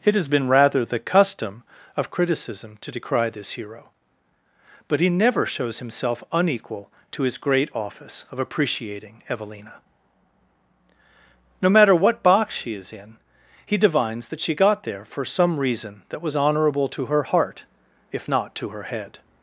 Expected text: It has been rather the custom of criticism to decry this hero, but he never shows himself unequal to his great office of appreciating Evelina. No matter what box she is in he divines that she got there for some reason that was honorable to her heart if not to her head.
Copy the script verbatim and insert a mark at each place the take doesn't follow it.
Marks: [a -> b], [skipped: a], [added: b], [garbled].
It has been rather the custom of criticism to decry this hero, but he never shows himself unequal to his great office of appreciating Evelina. No matter what box she is in he divines that she got there for some reason that was honorable to her heart if not to her head.